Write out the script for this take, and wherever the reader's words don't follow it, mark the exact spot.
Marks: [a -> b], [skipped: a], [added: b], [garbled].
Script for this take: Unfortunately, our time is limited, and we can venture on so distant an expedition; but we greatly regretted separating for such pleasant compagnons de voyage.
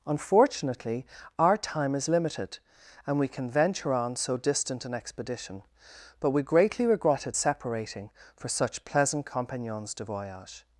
Unfortunately, our time is limited, and we can venture on so distant an expedition; but we greatly regretted separating for such pleasant compagnons de voyage.